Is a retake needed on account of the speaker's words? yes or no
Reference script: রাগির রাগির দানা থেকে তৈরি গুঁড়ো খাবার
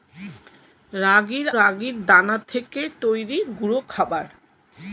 no